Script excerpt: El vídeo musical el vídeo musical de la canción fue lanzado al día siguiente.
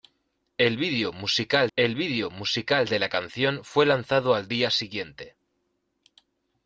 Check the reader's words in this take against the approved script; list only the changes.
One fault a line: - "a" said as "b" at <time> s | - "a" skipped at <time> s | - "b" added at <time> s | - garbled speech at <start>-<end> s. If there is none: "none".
none